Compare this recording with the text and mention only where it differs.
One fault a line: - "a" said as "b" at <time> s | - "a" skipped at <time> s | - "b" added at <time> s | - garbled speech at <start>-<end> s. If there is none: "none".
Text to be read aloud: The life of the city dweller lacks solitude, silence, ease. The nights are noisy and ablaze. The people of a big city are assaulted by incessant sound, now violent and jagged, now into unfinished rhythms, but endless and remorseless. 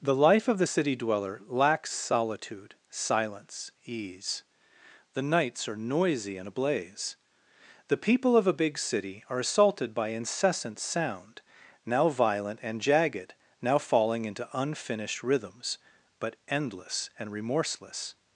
- "falling" added at 13.8 s